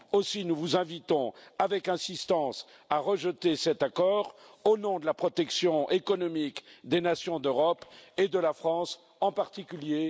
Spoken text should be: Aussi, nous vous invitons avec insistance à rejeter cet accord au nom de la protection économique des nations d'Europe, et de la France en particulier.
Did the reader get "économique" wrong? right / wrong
right